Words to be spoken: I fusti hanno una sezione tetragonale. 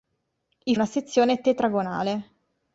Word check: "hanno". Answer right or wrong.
wrong